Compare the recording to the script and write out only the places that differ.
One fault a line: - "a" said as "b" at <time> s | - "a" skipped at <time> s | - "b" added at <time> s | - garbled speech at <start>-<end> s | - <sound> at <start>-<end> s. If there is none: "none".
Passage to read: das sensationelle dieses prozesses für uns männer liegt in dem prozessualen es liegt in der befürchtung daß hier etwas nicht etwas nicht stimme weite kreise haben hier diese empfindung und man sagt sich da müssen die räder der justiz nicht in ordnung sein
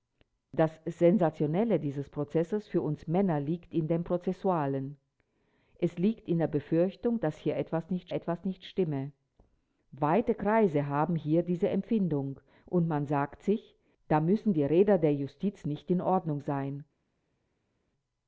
none